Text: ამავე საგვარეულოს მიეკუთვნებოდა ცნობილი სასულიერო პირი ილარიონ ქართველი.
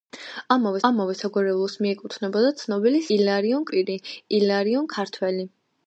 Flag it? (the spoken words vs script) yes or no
yes